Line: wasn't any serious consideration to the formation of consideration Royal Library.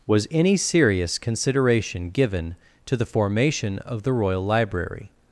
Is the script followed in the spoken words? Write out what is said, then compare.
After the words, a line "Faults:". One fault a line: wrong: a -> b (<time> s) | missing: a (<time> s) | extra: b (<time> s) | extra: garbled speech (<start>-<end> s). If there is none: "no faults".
was any serious consideration given to the formation of the Royal Library.
Faults:
wrong: wasn't -> was (0.1 s)
extra: given (2.1 s)
wrong: consideration -> the (4.0 s)